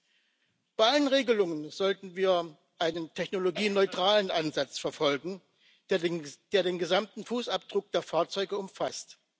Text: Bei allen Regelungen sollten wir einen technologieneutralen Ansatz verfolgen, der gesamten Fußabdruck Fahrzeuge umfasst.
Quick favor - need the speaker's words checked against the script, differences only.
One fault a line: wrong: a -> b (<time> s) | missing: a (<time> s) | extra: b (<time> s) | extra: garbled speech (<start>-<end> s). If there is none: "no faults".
extra: den (6.0 s)
extra: der (7.9 s)